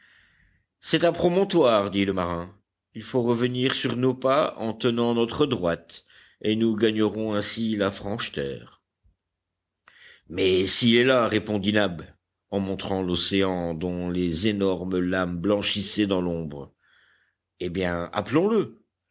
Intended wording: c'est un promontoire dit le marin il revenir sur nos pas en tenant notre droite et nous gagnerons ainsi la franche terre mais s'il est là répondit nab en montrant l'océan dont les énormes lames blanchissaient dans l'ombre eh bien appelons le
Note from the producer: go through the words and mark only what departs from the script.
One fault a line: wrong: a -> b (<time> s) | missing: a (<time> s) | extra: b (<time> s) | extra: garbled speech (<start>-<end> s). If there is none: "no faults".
extra: faut (3.0 s)